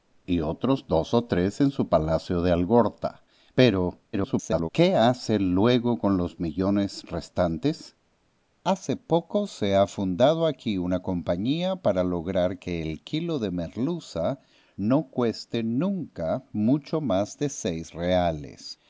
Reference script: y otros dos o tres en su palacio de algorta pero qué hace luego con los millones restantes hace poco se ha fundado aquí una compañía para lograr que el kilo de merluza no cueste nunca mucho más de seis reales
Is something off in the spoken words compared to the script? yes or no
yes